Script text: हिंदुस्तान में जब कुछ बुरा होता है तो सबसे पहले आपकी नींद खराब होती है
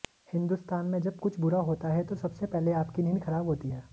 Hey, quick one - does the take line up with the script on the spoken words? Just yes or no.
yes